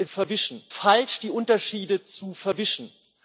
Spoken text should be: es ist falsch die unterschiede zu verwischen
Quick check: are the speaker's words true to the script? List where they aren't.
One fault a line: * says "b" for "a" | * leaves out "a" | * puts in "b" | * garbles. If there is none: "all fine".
* says "verwischen" for "ist"